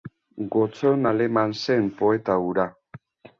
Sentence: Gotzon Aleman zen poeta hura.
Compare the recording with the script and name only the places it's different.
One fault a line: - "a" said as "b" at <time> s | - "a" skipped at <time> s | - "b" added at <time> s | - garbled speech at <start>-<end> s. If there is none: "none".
none